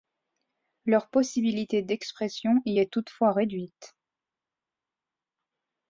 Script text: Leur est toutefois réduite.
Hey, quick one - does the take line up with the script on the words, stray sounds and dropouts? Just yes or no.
no